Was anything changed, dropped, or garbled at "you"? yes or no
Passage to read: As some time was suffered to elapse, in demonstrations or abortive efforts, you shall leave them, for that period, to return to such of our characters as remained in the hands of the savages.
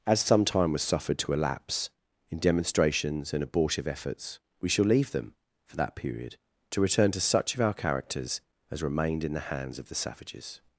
yes